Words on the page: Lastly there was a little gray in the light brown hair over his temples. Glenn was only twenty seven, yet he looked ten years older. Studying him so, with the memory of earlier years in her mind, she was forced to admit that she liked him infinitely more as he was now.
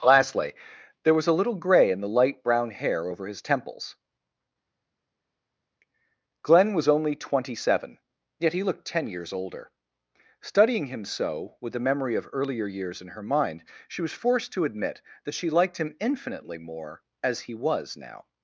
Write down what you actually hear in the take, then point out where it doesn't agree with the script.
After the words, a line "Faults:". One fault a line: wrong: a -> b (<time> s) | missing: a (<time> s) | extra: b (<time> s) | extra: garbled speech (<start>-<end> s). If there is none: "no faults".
Lastly there was a little gray in the light brown hair over his temples. Glenn was only twenty seven, yet he looked ten years older. Studying him so, with the memory of earlier years in her mind, she was forced to admit that she liked him infinitely more as he was now.
Faults:
no faults